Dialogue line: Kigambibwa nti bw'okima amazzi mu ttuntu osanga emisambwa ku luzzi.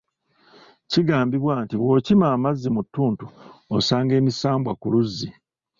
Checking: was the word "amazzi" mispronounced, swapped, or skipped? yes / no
no